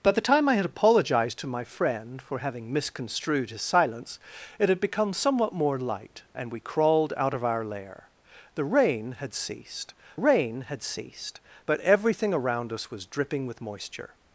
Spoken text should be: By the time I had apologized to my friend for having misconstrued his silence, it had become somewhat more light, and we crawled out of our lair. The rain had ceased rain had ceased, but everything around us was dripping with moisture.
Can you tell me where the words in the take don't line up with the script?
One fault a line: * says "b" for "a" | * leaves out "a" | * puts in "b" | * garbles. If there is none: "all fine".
all fine